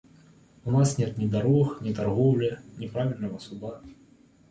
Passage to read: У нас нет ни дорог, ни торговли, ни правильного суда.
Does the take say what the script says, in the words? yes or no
yes